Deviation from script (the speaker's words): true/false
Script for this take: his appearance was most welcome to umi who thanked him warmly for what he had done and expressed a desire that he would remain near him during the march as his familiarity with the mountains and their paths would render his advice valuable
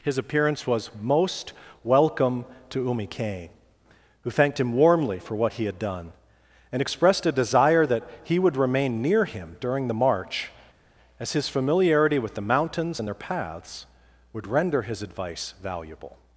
true